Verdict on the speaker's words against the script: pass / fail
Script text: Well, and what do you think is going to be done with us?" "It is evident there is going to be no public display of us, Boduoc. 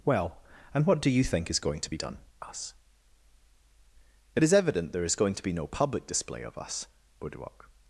fail